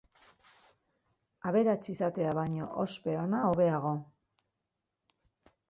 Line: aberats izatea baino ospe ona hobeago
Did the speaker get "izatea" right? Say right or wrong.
right